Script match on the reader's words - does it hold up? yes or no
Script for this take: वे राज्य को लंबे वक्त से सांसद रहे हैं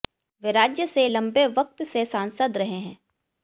no